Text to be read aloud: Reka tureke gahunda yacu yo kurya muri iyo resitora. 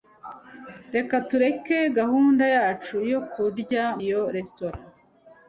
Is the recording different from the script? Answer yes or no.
yes